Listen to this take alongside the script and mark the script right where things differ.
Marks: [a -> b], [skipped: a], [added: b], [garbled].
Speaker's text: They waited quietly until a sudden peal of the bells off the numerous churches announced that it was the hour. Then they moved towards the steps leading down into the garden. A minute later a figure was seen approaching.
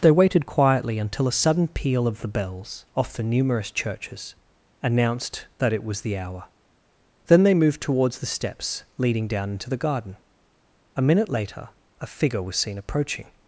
They waited quietly until a sudden peal of the bells off the numerous churches announced that it was the hour. Then they moved towards the steps leading down into the garden. A minute later a figure was seen approaching.